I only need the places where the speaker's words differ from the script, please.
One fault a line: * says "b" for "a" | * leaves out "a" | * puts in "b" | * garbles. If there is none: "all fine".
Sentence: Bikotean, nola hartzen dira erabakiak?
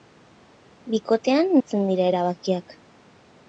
* leaves out "nola"